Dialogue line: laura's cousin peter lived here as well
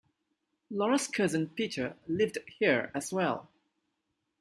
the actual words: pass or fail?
pass